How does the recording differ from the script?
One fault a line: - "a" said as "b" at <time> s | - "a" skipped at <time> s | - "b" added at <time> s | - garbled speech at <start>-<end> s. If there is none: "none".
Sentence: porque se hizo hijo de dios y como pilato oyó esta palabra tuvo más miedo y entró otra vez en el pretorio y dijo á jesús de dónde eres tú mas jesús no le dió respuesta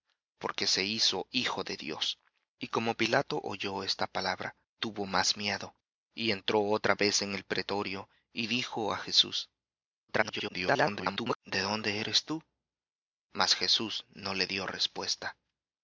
- garbled speech at 10.1-11.4 s